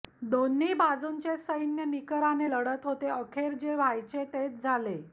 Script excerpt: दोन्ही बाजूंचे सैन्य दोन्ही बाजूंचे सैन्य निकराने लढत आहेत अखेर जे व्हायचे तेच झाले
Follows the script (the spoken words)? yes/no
no